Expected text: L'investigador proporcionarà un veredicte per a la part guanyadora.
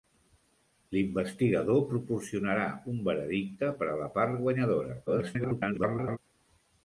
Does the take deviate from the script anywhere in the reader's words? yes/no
yes